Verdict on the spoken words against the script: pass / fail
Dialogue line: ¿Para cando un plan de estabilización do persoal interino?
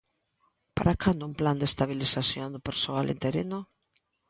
pass